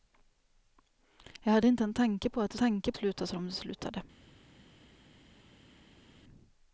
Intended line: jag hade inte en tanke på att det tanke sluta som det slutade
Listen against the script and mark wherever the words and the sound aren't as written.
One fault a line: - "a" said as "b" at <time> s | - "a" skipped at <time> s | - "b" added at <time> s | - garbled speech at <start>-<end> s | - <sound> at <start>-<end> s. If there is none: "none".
none